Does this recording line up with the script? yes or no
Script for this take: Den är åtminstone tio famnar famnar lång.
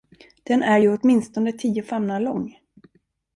no